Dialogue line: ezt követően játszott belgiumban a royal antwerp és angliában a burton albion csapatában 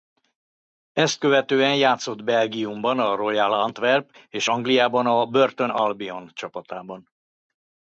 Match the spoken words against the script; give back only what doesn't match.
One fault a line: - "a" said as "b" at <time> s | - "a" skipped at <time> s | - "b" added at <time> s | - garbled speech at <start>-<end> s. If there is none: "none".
none